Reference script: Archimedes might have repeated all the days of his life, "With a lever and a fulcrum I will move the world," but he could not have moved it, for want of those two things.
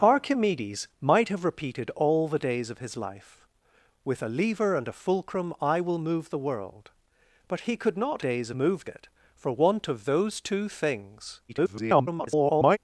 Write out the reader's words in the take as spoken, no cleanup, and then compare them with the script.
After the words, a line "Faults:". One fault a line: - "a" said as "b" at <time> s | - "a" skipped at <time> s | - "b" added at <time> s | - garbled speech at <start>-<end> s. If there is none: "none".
Archimedes might have repeated all the days of his life, "With a lever and a fulcrum I will move the world," but he could not days moved it, for want of those two things. [garbled]
Faults:
- "have" said as "days" at 8.2 s
- garbled speech at 11.5-12.8 s